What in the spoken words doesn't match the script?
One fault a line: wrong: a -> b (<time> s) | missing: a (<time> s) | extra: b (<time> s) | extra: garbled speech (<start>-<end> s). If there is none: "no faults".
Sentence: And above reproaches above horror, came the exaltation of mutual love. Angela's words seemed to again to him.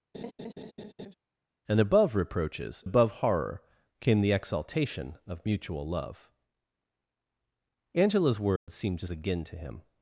no faults